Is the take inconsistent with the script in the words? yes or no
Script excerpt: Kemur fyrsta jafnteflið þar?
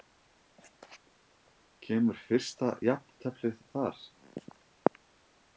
no